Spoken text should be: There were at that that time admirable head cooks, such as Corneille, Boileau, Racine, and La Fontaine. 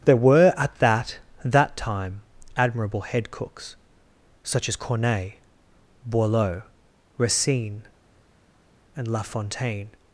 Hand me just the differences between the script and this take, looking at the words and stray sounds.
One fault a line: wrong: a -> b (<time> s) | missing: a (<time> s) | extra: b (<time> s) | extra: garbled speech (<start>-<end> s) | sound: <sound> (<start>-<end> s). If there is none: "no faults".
no faults